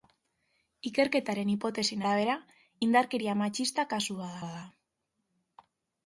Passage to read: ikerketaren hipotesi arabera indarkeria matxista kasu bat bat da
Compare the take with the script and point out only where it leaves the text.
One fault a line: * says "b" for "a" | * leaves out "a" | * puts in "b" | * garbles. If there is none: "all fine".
all fine